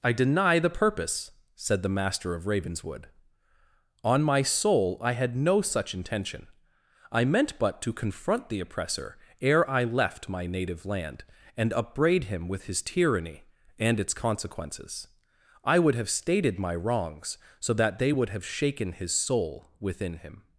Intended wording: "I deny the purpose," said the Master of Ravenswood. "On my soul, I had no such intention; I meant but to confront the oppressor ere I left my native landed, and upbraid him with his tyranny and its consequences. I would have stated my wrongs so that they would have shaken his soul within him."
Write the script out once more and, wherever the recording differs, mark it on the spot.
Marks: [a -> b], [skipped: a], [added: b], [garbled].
"I deny the purpose," said the Master of Ravenswood. "On my soul, I had no such intention; I meant but to confront the oppressor ere I left my native [landed, -> land] and upbraid him with his tyranny and its consequences. I would have stated my wrongs so that they would have shaken his soul within him."